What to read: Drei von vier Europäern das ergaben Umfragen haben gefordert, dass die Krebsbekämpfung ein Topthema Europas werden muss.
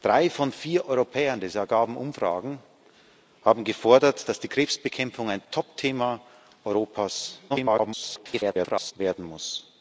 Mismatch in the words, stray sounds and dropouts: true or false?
true